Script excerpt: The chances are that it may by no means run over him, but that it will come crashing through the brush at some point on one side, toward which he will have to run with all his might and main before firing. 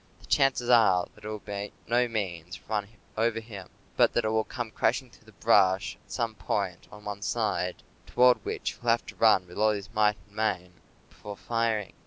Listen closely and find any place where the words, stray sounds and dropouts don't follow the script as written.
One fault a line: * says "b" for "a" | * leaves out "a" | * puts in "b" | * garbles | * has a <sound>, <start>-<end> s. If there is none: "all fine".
* says "will" for "may"